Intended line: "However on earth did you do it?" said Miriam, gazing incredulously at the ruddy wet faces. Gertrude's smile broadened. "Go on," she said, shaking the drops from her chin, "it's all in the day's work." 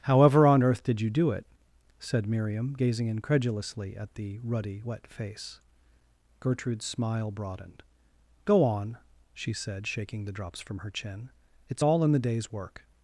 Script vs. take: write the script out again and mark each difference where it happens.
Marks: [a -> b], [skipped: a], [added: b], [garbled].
"However on earth did you do it?" said Miriam, gazing incredulously at the ruddy wet [faces. -> face] Gertrude's smile broadened. "Go on," she said, shaking the drops from her chin, "it's all in the day's work."